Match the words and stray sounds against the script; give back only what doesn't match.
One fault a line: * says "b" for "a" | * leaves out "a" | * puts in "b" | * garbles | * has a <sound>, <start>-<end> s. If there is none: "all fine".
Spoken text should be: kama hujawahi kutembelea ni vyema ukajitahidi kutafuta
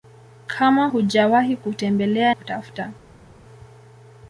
* leaves out "ni vyema ukajitahidi"